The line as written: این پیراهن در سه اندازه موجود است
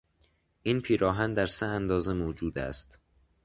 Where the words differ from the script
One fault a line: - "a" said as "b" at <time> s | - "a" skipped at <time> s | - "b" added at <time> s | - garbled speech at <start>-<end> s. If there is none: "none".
none